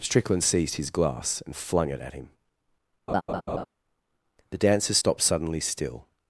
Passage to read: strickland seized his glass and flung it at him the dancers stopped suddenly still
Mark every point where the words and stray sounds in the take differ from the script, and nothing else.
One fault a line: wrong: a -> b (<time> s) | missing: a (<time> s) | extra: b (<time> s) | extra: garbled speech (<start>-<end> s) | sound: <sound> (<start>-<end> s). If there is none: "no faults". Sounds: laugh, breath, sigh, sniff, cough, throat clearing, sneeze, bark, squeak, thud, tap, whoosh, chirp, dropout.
sound: laugh (3.1-3.7 s)